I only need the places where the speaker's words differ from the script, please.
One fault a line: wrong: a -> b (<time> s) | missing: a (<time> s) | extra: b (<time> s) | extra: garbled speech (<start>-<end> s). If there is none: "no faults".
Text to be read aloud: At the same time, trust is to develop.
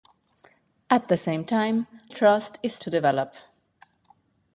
no faults